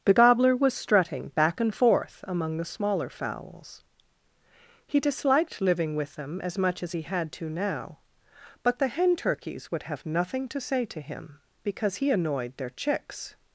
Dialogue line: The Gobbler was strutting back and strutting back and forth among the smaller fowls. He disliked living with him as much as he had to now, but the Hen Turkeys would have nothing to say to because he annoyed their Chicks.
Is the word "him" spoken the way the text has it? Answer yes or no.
no